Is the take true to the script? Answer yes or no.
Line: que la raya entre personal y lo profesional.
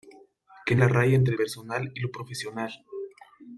yes